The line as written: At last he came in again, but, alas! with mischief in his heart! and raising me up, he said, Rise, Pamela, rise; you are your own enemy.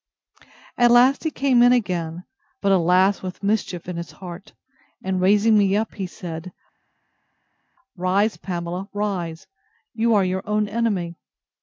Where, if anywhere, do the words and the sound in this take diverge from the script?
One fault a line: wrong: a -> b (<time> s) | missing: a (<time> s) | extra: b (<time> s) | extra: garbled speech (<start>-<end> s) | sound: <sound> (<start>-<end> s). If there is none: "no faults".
no faults